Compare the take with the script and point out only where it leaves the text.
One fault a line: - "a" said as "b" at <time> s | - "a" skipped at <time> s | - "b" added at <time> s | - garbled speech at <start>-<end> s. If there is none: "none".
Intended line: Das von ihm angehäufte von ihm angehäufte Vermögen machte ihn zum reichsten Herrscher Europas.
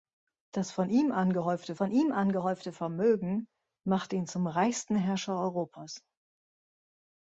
none